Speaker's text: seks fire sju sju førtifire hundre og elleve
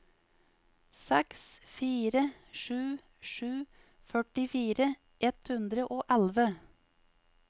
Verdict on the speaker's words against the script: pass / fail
fail